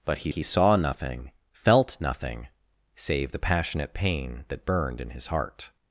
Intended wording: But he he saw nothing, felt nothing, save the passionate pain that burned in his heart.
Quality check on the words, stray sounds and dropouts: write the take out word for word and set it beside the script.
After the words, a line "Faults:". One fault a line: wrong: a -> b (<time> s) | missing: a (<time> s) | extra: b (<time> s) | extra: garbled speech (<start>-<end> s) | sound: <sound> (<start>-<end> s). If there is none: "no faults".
But he he saw nothing, felt nothing, save the passionate pain that burned in his heart.
Faults:
no faults